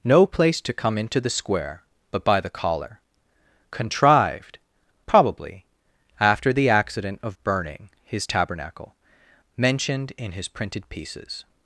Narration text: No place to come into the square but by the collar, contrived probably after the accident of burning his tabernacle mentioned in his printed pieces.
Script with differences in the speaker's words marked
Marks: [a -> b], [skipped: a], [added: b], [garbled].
No place to come into the square but by the collar, contrived probably after the accident of burning his tabernacle mentioned in his printed pieces.